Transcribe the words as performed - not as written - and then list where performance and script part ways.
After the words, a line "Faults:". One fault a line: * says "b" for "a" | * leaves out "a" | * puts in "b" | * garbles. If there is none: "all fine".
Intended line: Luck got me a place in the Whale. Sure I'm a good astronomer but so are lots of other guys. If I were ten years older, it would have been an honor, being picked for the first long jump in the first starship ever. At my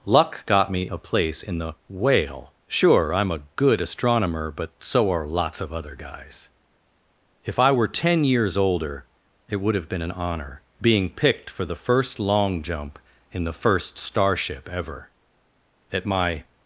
Luck got me a place in the Whale. Sure I'm a good astronomer but so are lots of other guys. If I were ten years older, it would have been an honor, being picked for the first long jump in the first starship ever. At my
Faults:
all fine